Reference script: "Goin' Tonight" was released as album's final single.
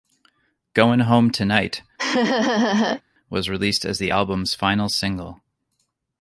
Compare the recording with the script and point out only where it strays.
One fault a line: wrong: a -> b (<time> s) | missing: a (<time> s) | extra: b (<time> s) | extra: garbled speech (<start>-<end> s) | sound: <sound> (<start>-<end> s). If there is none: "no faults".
extra: Home (1.0 s)
sound: laugh (2.0-3.0 s)
extra: the (4.0 s)